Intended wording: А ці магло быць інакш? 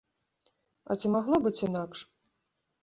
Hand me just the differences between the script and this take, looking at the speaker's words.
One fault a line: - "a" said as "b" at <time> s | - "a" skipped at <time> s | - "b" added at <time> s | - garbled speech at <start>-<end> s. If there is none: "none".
none